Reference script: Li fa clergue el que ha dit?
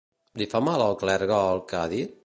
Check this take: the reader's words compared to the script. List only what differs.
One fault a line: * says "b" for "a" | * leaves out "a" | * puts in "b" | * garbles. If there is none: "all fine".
* puts in "mal al"